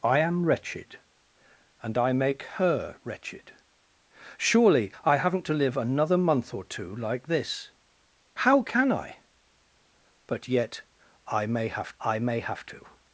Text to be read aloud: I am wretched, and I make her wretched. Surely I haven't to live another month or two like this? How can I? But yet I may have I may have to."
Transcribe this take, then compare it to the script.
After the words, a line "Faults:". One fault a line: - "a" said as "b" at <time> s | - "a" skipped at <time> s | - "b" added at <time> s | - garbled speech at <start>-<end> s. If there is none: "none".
I am wretched, and I make her wretched. Surely I haven't to live another month or two like this? How can I? But yet I may have I may have to."
Faults:
none